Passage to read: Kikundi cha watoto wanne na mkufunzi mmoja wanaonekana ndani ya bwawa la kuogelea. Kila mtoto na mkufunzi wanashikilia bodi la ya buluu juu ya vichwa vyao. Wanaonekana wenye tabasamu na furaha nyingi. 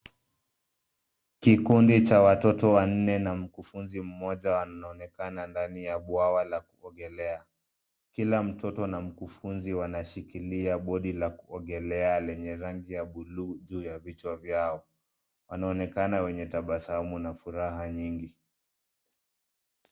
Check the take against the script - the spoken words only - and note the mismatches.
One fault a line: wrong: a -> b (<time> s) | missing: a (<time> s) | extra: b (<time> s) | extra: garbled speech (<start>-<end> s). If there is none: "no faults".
extra: kuogelea lenye rangi (11.3 s)